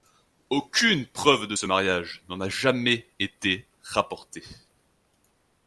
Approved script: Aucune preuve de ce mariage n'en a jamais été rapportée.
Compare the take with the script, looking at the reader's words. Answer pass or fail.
pass